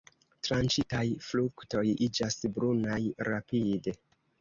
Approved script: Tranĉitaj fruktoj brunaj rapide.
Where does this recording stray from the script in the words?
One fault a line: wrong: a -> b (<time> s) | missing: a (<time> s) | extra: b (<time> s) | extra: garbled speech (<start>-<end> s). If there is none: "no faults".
extra: iĝas (2.1 s)